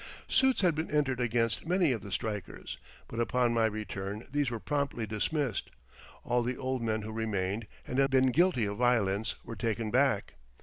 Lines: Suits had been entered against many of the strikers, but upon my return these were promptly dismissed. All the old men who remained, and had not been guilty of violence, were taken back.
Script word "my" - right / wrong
right